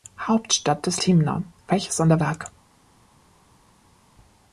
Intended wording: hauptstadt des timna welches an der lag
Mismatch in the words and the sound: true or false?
false